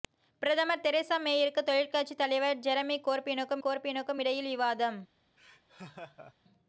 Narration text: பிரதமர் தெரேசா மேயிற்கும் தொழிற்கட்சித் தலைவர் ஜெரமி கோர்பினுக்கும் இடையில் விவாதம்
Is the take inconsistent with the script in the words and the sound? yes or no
yes